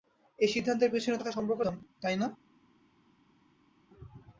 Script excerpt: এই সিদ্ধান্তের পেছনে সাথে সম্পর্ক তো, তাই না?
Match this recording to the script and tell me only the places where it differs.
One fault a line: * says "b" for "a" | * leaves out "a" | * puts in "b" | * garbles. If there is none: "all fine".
all fine